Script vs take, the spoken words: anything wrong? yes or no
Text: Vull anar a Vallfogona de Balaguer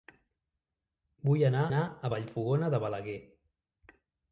yes